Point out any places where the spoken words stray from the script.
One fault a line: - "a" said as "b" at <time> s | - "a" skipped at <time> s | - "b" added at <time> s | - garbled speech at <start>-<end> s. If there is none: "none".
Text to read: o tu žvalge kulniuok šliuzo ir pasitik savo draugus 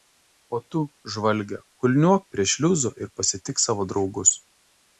- "prie" added at 2.3 s